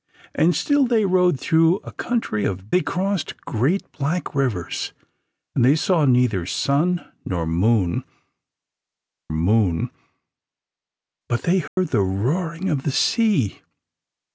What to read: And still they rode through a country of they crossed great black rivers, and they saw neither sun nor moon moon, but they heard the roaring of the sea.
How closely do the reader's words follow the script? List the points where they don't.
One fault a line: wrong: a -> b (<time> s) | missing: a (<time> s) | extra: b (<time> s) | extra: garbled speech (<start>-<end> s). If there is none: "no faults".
no faults